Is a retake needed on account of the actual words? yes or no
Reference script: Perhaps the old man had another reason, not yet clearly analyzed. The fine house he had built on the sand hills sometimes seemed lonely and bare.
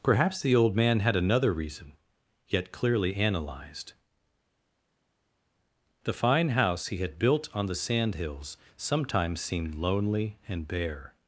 yes